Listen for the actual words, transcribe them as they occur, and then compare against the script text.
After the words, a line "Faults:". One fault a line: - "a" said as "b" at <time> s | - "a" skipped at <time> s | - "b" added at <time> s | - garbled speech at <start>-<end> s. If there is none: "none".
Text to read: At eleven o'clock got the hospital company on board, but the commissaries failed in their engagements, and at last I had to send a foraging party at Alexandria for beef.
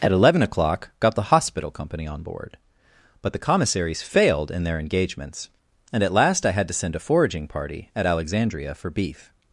At eleven o'clock got the hospital company on board, but the commissaries failed in their engagements, and at last I had to send a foraging party at Alexandria for beef.
Faults:
none